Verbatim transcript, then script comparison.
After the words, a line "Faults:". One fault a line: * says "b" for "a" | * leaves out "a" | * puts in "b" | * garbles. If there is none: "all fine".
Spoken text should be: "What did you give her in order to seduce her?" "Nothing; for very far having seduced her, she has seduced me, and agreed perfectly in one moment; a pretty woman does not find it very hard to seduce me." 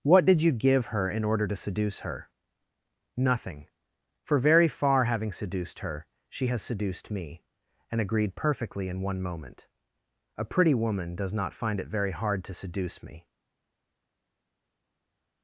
"What did you give her in order to seduce her?" "Nothing; for very far having seduced her, she has seduced me, and agreed perfectly in one moment; a pretty woman does not find it very hard to seduce me."
Faults:
all fine